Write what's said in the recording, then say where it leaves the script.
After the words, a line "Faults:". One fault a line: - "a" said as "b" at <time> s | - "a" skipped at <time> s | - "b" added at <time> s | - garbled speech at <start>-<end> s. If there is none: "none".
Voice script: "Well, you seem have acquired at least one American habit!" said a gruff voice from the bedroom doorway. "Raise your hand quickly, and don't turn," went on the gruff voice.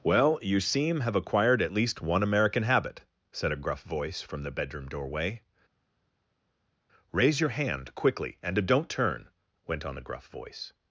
"Well, you seem have acquired at least one American habit!" said a gruff voice from the bedroom doorway. "Raise your hand quickly, and don't turn," went on the gruff voice.
Faults:
none